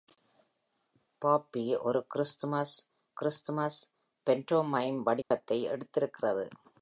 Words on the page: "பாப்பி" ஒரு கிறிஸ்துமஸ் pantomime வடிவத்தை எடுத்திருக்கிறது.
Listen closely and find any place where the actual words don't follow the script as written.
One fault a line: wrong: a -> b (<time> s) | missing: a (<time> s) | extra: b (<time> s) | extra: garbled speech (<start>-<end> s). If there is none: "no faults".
extra: கிறிஸ்துமஸ் (3.1 s)